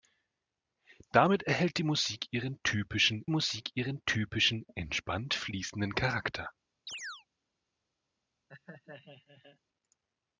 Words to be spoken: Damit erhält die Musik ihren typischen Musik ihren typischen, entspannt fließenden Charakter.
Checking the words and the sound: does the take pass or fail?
fail